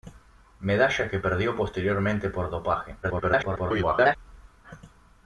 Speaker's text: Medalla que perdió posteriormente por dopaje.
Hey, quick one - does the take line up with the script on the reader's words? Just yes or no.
no